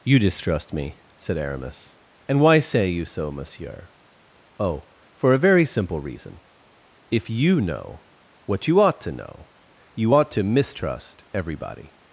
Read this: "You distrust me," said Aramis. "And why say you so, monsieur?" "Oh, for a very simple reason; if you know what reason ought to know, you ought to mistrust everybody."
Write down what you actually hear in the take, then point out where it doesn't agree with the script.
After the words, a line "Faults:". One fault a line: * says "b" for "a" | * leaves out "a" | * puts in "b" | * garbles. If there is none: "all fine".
"You distrust me," said Aramis. "And why say you so, monsieur?" "Oh, for a very simple reason; if you know what you ought to know, you ought to mistrust everybody."
Faults:
* says "you" for "reason"